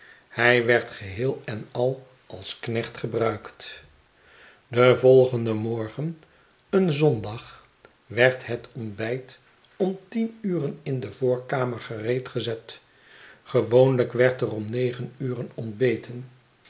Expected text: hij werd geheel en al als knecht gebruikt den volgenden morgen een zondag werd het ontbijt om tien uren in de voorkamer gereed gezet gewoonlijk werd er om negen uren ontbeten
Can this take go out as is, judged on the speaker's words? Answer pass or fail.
pass